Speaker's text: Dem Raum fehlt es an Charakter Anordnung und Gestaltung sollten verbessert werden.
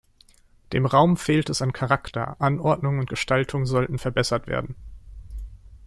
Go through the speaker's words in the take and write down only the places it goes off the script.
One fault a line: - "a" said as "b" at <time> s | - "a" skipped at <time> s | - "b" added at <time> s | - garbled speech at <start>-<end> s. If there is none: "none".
none